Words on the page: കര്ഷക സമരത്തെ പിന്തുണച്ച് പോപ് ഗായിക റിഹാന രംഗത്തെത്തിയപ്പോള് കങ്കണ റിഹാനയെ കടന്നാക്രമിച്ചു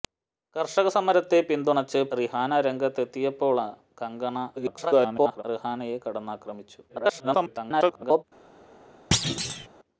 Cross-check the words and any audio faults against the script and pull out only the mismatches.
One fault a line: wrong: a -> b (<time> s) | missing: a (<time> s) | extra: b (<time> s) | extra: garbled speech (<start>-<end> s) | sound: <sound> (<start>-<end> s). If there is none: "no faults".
missing: പോപ് ഗായിക (2.0 s)
extra: garbled speech (4.6-5.4 s)
extra: garbled speech (6.9-8.2 s)
sound: thud (9.1-9.7 s)